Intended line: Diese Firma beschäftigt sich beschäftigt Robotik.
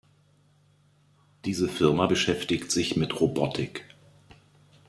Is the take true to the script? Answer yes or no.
no